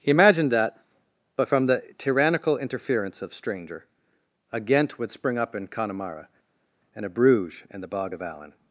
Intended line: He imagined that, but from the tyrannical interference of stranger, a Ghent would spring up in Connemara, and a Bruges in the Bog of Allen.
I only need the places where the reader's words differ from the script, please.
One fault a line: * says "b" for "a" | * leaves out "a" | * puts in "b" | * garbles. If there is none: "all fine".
all fine